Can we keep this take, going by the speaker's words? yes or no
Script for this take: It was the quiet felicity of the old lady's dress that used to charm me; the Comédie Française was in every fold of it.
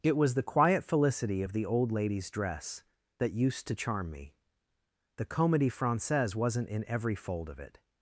no